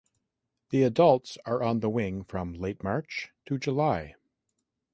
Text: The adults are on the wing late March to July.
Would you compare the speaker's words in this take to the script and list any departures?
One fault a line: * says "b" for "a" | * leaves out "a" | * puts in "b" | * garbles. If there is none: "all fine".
* puts in "from"